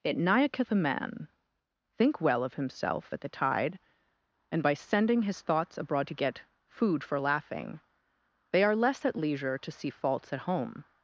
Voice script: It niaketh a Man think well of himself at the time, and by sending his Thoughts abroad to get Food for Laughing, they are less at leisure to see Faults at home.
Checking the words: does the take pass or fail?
fail